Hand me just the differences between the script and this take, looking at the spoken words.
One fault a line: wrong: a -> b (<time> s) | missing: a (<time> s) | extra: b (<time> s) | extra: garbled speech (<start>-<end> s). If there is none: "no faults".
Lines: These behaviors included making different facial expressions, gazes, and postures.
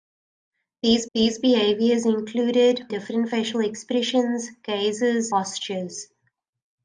extra: these (1.1 s)
missing: making (2.9 s)
missing: and (5.3 s)